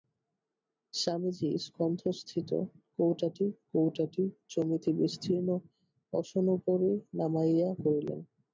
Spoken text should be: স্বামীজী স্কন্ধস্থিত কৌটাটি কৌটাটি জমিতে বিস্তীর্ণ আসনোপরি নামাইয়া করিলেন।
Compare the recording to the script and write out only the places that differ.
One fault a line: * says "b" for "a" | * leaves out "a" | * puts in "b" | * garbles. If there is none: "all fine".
all fine